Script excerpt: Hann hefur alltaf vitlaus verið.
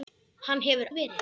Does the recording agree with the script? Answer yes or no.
no